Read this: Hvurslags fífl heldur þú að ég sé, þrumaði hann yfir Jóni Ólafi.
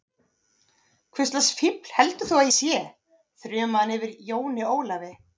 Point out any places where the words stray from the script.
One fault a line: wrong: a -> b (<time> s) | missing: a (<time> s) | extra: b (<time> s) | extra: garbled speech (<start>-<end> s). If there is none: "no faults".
missing: ég (2.5 s)